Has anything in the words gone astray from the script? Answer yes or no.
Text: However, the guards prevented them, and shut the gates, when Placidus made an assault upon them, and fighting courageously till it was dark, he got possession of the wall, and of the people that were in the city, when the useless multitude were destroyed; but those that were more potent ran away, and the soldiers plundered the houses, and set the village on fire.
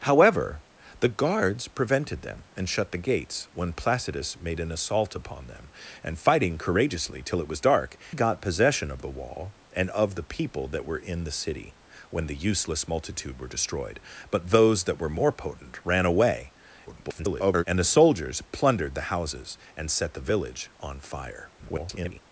yes